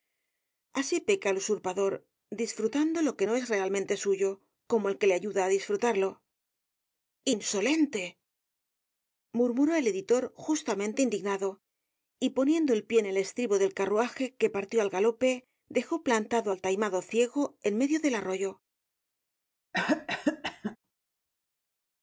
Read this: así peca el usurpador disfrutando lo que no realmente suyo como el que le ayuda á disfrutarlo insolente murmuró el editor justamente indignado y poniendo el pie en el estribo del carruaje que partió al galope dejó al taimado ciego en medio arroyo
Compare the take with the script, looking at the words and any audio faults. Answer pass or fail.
fail